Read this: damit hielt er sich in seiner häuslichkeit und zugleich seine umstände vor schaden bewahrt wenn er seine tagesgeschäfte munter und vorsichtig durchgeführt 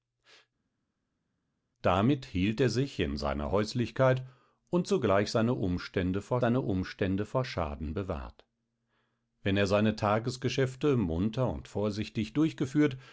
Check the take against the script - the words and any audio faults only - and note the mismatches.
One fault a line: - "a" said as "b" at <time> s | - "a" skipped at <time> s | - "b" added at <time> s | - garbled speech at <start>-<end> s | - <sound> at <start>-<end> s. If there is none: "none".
- "seine umstände vor" added at 6.4 s